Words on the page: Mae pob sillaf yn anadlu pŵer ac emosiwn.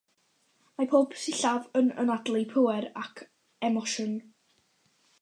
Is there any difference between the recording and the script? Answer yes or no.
no